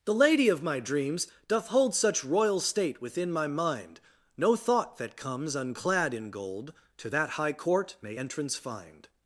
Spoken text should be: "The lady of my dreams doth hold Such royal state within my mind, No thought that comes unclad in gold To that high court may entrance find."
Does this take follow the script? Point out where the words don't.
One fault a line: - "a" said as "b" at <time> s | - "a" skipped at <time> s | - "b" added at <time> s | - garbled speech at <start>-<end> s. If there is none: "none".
none